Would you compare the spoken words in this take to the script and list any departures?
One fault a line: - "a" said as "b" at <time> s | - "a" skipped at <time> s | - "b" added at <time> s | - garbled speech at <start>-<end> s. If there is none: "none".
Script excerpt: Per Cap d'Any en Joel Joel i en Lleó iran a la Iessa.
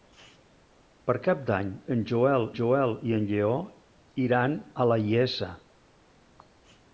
none